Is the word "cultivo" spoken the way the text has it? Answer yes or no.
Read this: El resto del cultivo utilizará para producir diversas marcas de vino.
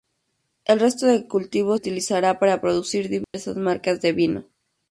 yes